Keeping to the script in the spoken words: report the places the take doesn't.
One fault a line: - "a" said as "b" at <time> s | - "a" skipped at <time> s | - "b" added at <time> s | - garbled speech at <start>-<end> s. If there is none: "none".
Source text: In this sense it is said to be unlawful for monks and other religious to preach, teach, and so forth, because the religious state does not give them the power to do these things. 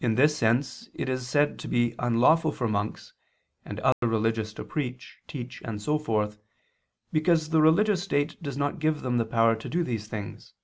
none